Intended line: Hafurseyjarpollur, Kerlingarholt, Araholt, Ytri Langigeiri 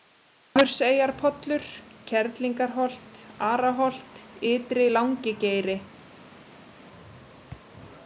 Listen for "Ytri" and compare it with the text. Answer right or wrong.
right